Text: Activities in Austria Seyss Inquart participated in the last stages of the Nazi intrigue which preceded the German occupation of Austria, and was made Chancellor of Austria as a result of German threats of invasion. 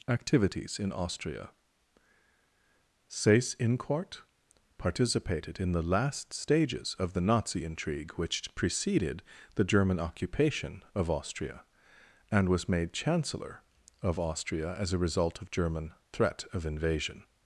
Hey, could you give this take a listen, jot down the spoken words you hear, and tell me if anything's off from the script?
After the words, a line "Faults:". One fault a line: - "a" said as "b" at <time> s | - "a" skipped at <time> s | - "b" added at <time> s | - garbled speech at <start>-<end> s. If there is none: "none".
Activities in Austria Seyss Inquart participated in the last stages of the Nazi intrigue which preceded the German occupation of Austria, and was made Chancellor of Austria as a result of German threat of invasion.
Faults:
- "threats" said as "threat" at 16.1 s